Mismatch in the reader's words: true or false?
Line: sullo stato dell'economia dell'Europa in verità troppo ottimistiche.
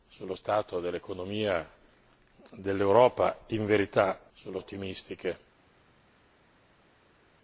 true